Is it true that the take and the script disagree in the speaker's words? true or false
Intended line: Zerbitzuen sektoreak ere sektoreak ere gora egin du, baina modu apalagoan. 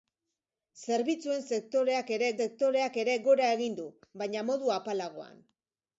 false